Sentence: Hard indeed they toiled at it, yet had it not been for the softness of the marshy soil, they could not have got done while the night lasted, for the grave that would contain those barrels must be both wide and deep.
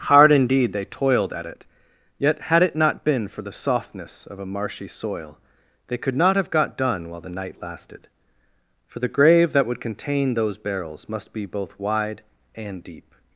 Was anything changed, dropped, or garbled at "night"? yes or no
no